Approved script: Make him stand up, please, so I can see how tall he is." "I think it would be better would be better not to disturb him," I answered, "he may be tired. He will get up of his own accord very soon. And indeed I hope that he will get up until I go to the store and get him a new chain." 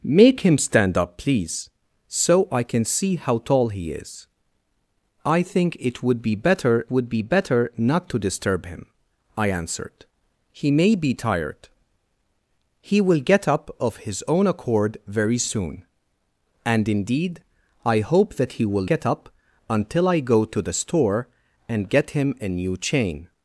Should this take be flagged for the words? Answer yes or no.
no